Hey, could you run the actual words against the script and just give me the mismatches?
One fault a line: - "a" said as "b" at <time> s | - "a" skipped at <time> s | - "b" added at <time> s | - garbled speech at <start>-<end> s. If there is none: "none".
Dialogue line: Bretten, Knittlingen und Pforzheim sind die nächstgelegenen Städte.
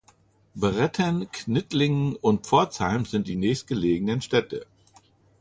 none